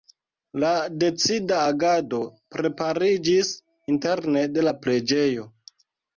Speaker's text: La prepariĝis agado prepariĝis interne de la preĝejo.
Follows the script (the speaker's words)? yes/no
no